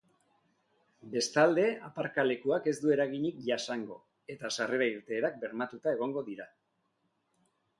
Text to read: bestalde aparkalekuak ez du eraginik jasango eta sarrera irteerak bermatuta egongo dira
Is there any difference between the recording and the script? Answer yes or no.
no